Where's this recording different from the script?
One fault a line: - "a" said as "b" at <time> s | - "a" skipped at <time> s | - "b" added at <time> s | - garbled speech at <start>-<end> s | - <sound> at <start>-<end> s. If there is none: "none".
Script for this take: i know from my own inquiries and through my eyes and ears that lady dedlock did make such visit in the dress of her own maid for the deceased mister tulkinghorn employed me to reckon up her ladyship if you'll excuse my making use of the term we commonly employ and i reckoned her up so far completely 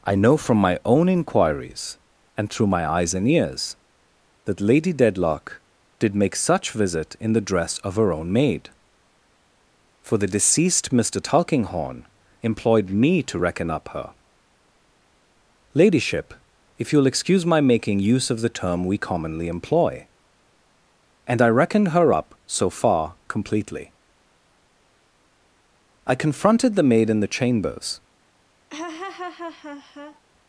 - "i confronted the maid in the chambers" added at 26.1 s
- laugh at 28.7-30.2 s